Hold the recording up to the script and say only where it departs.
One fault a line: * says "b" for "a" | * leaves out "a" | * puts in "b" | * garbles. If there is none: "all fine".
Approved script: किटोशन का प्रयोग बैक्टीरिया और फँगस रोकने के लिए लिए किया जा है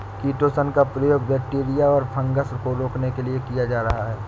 * puts in "को"
* leaves out "लिए"
* puts in "रहा"